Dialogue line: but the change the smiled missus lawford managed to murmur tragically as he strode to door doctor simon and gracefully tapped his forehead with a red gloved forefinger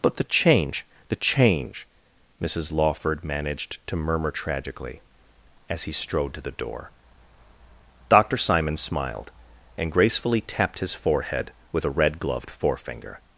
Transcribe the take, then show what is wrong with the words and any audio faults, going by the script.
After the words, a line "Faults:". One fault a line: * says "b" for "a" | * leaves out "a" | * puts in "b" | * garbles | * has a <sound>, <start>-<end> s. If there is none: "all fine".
but the change the change missus lawford managed to murmur tragically as he strode to the door doctor simon smiled and gracefully tapped his forehead with a red gloved forefinger
Faults:
* says "change" for "smiled"
* puts in "the"
* puts in "smiled"